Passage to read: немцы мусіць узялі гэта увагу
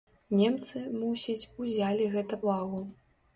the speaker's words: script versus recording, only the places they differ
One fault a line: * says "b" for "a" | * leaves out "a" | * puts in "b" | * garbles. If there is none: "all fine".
all fine